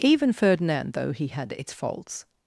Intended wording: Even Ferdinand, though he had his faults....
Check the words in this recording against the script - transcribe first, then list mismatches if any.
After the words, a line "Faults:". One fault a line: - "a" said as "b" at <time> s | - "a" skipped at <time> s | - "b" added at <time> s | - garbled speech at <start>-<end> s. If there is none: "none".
Even Ferdinand, though he had its faults....
Faults:
- "his" said as "its" at 1.6 s